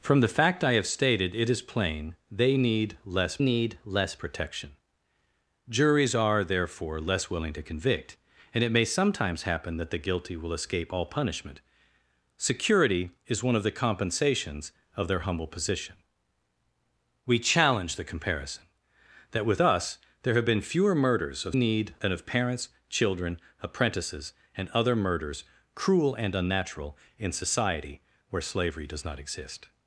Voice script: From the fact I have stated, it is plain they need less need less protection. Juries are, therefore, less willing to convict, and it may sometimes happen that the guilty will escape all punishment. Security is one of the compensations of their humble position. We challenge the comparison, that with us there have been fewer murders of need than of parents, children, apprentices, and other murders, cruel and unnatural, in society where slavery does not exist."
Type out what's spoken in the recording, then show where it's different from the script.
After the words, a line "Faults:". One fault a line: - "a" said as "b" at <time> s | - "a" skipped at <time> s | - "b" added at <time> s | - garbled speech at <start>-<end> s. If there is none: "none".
From the fact I have stated, it is plain they need less need less protection. Juries are, therefore, less willing to convict, and it may sometimes happen that the guilty will escape all punishment. Security is one of the compensations of their humble position. We challenge the comparison, that with us there have been fewer murders of need than of parents, children, apprentices, and other murders, cruel and unnatural, in society where slavery does not exist."
Faults:
none